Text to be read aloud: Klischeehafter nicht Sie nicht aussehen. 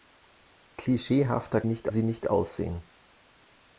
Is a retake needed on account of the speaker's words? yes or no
no